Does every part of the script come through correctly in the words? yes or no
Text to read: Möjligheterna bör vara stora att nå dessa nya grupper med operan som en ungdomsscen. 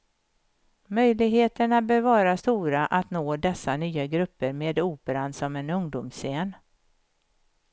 yes